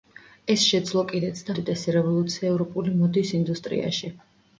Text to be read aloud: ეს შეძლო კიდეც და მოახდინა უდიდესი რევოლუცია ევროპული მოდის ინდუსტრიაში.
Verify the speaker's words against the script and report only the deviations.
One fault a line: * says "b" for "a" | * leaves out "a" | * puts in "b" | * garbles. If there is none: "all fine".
* leaves out "მოახდინა"